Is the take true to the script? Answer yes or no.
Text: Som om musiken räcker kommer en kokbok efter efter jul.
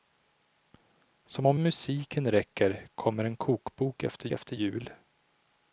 yes